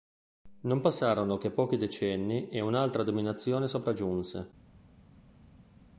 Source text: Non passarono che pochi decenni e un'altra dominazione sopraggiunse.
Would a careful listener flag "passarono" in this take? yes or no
no